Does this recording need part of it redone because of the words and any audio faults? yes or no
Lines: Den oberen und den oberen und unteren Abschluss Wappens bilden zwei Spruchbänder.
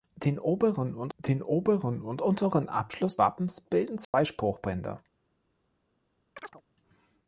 yes